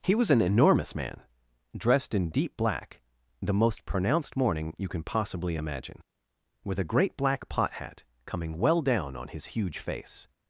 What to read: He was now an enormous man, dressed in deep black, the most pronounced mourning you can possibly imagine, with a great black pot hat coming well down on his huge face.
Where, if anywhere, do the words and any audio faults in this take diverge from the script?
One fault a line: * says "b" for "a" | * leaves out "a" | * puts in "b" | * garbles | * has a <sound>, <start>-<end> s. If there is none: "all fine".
* leaves out "now"